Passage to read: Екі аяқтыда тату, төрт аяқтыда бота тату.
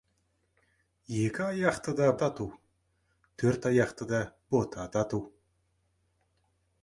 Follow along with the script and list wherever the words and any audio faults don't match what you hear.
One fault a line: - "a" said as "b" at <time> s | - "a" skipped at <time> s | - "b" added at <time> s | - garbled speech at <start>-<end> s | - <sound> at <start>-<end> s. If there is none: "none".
none